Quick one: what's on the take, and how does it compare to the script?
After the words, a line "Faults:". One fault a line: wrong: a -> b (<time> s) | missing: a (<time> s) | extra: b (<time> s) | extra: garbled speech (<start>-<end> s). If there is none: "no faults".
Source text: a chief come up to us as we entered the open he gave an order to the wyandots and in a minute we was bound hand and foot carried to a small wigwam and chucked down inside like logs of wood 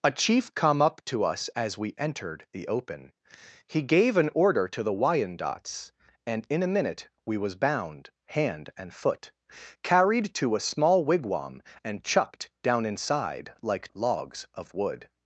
a chief come up to us as we entered the open he gave an order to the wyandots and in a minute we was bound hand and foot carried to a small wigwam and chucked down inside like logs of wood
Faults:
no faults